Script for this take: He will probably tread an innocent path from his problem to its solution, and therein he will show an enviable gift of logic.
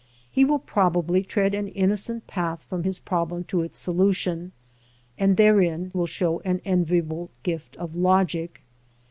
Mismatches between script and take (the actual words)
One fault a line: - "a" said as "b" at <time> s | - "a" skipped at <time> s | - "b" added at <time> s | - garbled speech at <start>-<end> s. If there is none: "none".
- "he" skipped at 5.9 s